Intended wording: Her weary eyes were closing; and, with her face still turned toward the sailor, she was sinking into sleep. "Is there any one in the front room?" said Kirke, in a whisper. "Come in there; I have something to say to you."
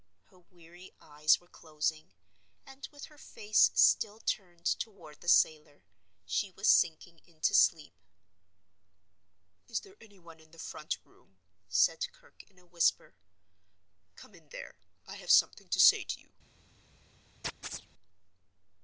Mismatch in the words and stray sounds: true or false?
true